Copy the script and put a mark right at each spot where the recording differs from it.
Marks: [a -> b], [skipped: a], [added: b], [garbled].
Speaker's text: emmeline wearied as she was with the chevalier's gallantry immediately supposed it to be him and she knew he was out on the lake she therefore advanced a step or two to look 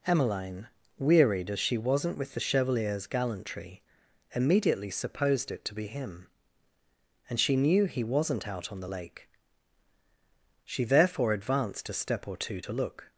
emmeline wearied as she [was -> wasn't] with the chevalier's gallantry immediately supposed it to be him and she knew he [was -> wasn't] out on the lake she therefore advanced a step or two to look